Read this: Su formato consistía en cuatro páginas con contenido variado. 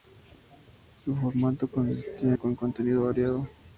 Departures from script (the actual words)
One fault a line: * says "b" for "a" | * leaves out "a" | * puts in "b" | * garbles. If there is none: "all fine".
* leaves out "en cuatro páginas"